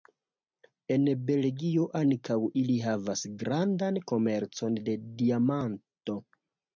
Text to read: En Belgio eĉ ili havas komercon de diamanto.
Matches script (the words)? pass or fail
fail